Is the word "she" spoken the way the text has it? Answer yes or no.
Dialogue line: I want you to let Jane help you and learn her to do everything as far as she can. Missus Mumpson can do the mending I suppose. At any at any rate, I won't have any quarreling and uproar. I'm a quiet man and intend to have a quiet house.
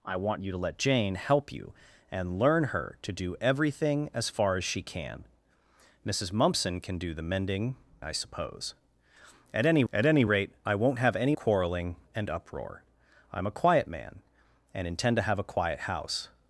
yes